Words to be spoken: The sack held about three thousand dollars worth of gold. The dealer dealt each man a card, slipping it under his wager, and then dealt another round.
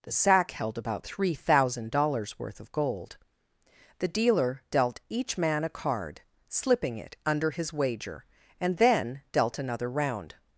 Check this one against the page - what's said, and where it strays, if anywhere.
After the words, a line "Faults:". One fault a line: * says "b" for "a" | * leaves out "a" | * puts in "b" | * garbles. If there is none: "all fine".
The sack held about three thousand dollars worth of gold. The dealer dealt each man a card, slipping it under his wager, and then dealt another round.
Faults:
all fine